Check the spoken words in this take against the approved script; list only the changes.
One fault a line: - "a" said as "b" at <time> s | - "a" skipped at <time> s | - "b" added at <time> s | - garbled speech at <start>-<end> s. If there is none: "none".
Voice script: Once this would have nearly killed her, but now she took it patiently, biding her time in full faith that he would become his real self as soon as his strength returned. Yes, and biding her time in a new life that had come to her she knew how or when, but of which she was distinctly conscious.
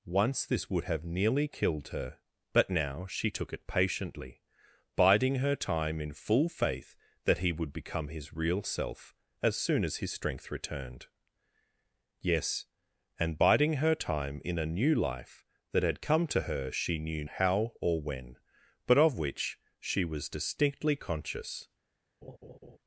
none